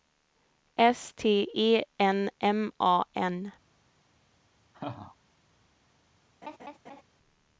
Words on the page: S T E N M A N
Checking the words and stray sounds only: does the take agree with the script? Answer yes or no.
no